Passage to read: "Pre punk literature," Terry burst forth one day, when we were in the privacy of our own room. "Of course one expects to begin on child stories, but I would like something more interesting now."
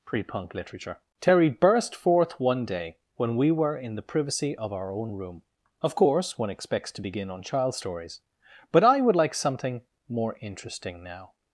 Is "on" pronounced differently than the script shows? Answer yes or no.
no